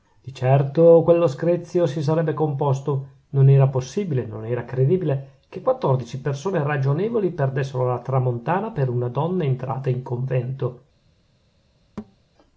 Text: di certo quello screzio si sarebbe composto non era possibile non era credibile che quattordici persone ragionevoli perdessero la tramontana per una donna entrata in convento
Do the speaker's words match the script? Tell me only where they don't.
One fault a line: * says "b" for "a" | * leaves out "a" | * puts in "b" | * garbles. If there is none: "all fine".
all fine